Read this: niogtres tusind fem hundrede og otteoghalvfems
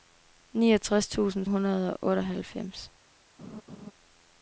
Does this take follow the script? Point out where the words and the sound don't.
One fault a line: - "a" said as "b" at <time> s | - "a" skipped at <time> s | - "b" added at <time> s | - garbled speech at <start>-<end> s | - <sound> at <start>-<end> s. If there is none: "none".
- "fem" skipped at 1.4 s
- laugh at 3.4-3.9 s